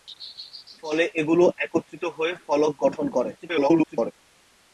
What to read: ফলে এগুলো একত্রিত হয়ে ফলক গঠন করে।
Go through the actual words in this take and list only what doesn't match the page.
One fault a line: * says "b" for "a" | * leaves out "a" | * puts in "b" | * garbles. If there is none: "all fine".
* garbles